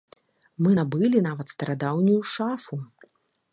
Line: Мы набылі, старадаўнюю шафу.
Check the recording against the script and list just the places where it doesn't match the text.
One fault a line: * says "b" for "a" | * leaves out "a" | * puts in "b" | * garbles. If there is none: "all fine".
* puts in "нават"